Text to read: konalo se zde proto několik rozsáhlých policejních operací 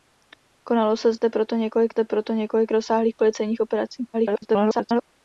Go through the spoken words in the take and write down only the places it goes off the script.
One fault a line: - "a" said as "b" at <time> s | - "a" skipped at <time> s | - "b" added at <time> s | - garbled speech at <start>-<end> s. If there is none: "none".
- "zde proto několik" added at 1.9 s
- garbled speech at 4.1-5.0 s